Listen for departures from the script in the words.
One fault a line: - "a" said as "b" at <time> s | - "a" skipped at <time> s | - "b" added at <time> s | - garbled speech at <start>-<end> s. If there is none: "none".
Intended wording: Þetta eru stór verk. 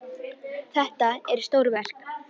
none